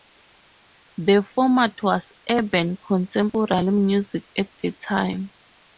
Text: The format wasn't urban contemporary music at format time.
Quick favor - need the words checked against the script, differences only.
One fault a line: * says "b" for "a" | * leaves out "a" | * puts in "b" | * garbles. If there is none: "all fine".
* says "was" for "wasn't"
* says "the" for "format"